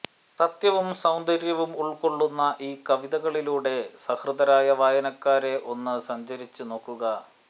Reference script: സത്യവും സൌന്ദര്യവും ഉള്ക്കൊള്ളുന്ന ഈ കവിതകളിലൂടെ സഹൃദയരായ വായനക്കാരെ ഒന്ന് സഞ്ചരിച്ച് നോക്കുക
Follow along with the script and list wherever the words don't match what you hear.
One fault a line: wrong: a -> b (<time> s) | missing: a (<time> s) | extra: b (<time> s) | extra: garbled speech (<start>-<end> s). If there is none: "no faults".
no faults